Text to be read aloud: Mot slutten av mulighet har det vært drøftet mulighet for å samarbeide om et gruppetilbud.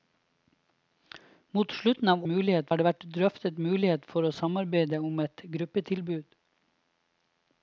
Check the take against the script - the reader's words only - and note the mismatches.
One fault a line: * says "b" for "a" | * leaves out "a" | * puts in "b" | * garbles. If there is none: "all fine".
all fine